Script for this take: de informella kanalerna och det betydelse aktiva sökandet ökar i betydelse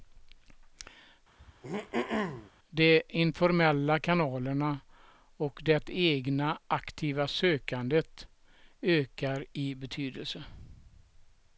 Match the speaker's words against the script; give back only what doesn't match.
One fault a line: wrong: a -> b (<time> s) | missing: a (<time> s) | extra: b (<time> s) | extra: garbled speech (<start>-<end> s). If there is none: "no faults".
wrong: betydelse -> egna (5.9 s)